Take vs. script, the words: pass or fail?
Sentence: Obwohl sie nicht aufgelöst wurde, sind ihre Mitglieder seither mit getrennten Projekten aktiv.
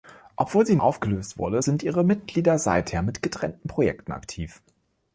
fail